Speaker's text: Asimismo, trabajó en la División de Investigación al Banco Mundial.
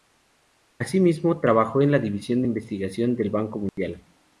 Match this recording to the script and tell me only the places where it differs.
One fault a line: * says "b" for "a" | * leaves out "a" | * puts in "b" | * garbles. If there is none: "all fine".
* says "del" for "al"